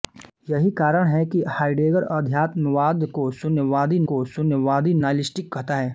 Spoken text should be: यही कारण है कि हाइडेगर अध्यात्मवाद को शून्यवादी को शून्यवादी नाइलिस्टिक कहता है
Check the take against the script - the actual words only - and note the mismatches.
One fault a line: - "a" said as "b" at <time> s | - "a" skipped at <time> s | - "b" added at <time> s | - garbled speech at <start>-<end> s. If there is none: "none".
none